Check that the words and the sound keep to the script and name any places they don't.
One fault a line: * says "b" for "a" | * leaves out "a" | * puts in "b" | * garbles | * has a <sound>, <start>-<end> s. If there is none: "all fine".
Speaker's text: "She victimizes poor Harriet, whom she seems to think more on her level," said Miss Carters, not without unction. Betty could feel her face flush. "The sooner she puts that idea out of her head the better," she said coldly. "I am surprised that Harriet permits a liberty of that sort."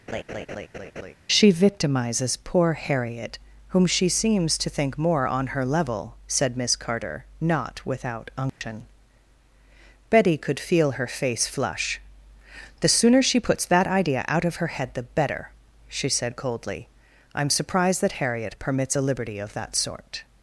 * has a laugh, 0.1-1.1 s
* says "Carter" for "Carters"
* has a dropout, 8.5-8.6 s